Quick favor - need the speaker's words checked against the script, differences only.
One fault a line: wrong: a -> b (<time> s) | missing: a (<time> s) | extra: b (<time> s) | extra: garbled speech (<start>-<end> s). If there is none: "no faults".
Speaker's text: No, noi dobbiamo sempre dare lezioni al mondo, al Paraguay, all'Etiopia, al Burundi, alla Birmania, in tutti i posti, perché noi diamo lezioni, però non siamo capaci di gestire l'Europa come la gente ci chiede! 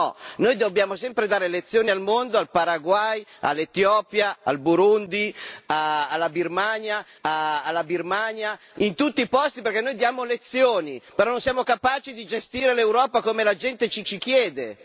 extra: alla Birmania (7.2 s)
extra: ci (14.0 s)